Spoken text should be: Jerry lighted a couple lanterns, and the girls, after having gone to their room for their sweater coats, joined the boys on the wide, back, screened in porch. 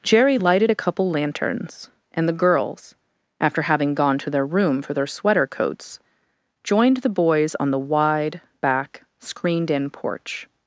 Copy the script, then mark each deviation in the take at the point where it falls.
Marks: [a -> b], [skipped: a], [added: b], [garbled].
Jerry lighted a couple lanterns, and the girls, after having gone to their room for their sweater coats, joined the boys on the wide, back, screened in porch.